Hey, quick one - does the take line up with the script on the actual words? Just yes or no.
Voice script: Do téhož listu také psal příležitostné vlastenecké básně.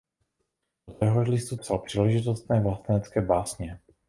no